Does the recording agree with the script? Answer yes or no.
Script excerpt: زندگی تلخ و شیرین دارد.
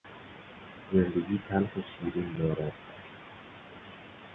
yes